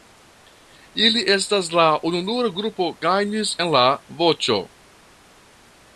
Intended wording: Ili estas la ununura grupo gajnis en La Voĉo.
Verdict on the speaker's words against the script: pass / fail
pass